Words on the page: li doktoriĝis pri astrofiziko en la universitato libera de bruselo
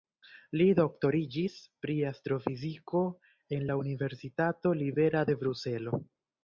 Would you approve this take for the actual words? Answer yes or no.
yes